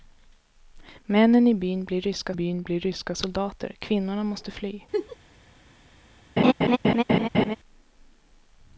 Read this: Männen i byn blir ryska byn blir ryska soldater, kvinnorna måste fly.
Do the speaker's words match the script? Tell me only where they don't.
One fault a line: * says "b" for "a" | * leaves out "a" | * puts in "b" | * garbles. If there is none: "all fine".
all fine